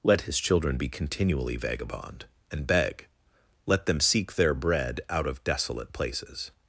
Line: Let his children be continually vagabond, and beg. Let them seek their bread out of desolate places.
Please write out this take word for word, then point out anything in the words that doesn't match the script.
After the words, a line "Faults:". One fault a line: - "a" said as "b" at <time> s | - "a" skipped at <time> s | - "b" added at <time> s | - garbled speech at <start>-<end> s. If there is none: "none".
Let his children be continually vagabond, and beg. Let them seek their bread out of desolate places.
Faults:
none